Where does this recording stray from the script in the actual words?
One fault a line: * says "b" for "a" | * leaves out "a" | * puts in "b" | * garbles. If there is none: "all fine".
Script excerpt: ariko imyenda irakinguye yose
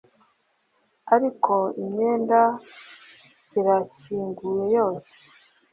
all fine